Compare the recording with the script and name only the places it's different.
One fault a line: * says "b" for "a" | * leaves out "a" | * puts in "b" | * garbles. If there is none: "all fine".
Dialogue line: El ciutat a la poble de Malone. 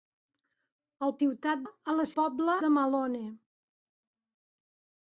all fine